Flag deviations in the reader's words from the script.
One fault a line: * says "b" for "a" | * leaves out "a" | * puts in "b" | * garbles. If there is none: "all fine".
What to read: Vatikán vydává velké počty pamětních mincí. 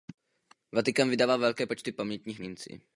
all fine